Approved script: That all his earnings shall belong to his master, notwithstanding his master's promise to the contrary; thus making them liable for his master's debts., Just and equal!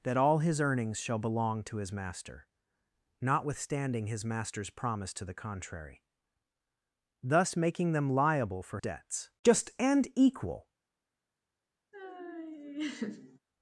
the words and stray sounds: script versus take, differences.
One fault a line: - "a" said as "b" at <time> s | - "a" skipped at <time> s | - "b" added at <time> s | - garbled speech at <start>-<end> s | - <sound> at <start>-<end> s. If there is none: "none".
- "his master's" skipped at 8.8 s
- laugh at 11.9-13.4 s